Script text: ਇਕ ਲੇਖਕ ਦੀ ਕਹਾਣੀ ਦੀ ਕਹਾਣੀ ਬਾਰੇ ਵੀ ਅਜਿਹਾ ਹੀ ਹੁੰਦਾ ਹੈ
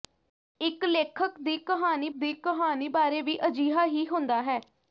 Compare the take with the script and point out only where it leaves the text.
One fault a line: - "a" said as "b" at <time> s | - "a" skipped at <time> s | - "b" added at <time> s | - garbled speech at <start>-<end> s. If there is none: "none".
none